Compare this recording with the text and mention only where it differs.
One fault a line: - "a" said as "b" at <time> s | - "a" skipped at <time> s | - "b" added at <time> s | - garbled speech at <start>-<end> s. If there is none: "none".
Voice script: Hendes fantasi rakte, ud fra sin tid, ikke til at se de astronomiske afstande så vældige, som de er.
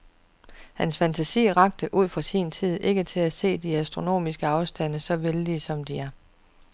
- "Hendes" said as "Hans" at 0.7 s